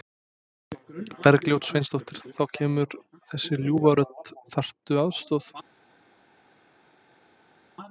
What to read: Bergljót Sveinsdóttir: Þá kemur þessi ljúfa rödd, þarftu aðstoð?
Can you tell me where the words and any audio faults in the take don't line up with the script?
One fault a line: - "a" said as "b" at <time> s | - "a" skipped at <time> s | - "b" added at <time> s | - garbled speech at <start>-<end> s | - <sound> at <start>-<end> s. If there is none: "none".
none